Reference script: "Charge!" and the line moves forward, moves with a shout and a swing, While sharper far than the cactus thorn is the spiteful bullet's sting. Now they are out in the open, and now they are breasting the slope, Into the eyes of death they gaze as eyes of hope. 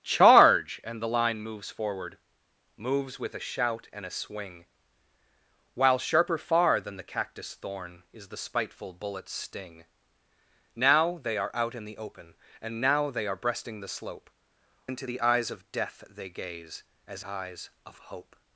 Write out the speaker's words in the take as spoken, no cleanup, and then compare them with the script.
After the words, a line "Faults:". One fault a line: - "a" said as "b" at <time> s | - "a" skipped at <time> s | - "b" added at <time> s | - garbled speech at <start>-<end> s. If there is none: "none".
"Charge!" and the line moves forward, moves with a shout and a swing, While sharper far than the cactus thorn is the spiteful bullet's sting. Now they are out in the open, and now they are breasting the slope, Into the eyes of death they gaze as eyes of hope.
Faults:
none